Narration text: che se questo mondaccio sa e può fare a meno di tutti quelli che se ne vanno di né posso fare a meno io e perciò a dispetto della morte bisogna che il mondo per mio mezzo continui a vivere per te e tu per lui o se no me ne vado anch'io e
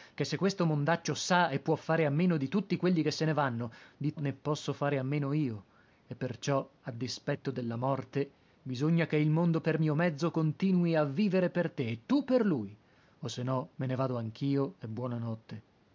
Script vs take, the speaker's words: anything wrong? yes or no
no